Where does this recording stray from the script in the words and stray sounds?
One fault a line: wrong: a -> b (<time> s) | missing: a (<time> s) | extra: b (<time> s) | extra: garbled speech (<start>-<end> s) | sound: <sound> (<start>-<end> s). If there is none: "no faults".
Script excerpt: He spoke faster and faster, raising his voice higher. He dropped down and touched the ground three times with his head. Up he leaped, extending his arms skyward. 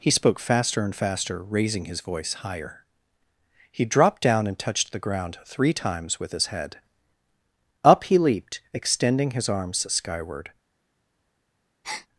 sound: breath (11.8-12.1 s)